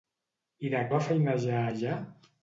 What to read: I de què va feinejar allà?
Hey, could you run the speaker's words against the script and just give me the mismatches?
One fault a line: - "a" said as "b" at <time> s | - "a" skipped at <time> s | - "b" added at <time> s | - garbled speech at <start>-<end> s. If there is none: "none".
- "què" skipped at 0.8 s